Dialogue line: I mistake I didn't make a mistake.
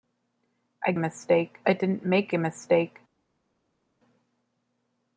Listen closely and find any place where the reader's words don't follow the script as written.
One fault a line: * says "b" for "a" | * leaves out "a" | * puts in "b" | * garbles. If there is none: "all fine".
all fine